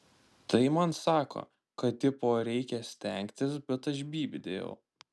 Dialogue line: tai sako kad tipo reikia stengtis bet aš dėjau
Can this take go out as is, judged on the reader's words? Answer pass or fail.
fail